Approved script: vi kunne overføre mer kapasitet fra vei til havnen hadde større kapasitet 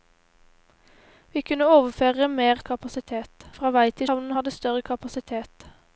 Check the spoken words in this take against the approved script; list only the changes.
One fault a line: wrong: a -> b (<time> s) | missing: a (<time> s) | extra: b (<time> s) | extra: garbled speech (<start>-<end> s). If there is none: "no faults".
no faults